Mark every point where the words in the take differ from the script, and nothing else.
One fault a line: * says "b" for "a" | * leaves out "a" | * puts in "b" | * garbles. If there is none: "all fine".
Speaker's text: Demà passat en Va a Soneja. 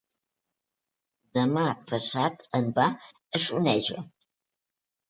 all fine